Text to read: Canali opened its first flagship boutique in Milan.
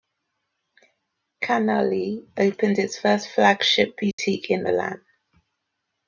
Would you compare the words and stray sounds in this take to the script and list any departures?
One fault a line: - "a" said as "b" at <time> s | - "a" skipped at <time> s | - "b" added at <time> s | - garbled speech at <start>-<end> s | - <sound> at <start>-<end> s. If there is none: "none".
- dropout at 4.1-4.2 s